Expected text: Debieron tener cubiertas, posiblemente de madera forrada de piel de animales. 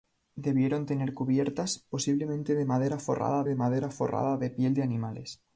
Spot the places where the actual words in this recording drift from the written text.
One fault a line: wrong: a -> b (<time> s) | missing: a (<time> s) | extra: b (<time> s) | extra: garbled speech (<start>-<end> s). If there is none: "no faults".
extra: madera forrada de (3.6 s)